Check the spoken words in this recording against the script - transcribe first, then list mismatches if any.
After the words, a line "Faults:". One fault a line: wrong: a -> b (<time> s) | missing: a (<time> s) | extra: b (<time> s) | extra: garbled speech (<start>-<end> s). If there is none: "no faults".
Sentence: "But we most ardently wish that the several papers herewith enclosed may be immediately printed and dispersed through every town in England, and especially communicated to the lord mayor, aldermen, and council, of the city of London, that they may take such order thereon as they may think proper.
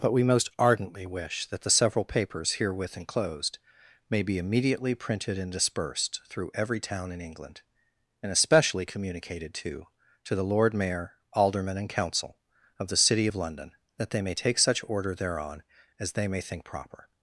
"But we most ardently wish that the several papers herewith enclosed may be immediately printed and dispersed through every town in England, and especially communicated to to the lord mayor, aldermen, and council, of the city of London, that they may take such order thereon as they may think proper.
Faults:
extra: to (10.2 s)